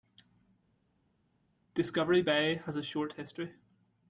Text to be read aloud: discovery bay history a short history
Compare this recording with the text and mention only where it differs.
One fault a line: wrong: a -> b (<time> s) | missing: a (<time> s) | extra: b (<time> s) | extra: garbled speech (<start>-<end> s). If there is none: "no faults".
wrong: history -> has (2.5 s)